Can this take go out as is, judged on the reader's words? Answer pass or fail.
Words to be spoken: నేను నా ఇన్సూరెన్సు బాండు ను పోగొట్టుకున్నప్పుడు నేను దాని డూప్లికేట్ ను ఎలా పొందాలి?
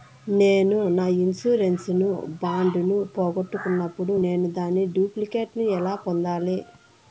pass